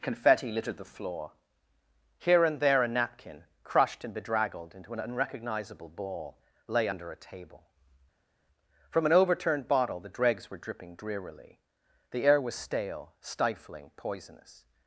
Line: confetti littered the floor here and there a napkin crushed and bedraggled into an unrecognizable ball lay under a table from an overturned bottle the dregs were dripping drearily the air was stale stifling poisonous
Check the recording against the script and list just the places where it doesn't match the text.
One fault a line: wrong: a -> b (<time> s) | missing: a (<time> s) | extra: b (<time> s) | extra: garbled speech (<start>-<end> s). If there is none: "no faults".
no faults